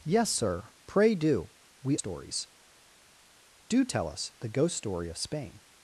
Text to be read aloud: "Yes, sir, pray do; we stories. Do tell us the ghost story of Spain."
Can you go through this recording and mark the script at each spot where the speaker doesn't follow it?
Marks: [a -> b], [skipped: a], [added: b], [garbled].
"Yes, sir, pray do; we stories. Do tell us the ghost story of Spain."